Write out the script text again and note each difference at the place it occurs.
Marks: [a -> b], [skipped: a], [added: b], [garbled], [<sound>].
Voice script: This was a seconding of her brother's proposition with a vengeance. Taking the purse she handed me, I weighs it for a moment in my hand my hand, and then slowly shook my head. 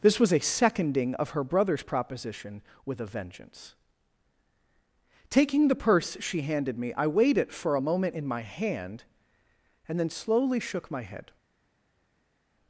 This was a seconding of her brother's proposition with a vengeance. Taking the purse she handed me, I [weighs -> weighed] it for a moment in my hand [skipped: my hand,] and then slowly shook my head.